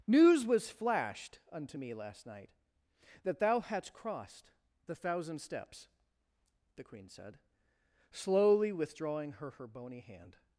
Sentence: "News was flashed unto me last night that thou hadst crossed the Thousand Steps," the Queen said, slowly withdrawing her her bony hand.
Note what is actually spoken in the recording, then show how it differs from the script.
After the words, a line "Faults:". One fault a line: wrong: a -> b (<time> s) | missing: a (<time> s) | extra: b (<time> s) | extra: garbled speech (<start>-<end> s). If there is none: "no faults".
"News was flashed unto me last night that thou hadst crossed the Thousand Steps," the Queen said, slowly withdrawing her her bony hand.
Faults:
no faults